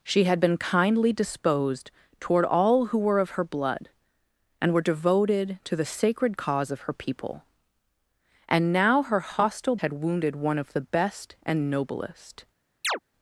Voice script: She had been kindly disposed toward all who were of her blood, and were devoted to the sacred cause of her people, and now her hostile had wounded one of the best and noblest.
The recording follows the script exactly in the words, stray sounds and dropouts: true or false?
false